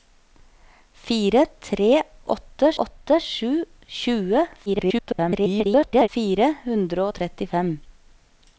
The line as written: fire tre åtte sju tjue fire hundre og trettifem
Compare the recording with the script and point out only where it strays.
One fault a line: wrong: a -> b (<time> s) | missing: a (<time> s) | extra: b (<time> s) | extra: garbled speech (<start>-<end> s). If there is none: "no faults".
extra: åtte (2.8 s)
extra: garbled speech (4.7-6.1 s)